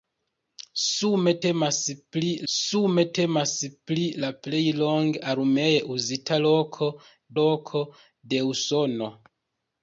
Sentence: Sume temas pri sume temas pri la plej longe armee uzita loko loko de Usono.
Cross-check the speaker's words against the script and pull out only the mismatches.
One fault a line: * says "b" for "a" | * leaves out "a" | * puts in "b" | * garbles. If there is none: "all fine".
all fine